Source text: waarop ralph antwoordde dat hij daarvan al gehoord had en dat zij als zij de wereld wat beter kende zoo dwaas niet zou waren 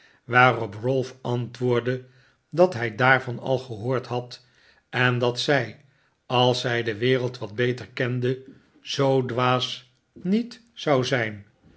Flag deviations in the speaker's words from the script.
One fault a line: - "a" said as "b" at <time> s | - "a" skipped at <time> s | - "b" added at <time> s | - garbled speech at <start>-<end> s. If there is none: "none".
- "waren" said as "zijn" at 11.1 s